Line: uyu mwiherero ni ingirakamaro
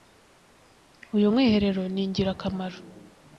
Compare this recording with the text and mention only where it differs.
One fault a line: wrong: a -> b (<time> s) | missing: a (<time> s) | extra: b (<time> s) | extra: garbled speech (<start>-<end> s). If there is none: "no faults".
no faults